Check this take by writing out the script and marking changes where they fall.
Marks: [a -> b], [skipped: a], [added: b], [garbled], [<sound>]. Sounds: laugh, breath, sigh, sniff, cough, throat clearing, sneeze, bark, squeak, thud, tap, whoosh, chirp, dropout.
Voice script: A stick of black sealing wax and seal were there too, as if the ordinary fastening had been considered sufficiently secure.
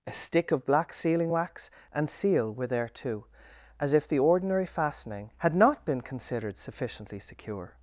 A stick of black sealing wax and seal were there too, as if the ordinary fastening had [added: not] been considered sufficiently secure.